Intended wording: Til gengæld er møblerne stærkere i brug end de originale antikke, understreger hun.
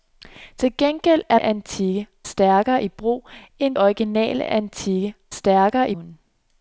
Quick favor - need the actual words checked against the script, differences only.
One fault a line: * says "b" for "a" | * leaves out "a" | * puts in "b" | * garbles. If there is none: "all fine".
* says "antikke" for "møblerne"
* leaves out "de"
* says "stærkere" for "understreger"